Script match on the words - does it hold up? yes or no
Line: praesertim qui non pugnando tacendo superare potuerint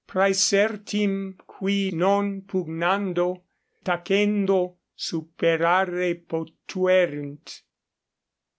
yes